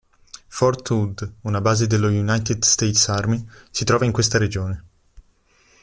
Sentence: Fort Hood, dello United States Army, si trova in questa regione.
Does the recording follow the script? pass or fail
fail